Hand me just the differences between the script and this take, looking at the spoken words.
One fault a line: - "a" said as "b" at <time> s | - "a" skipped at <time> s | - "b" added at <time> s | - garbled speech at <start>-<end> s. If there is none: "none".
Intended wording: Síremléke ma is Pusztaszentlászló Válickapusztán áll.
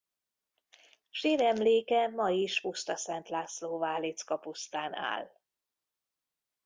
none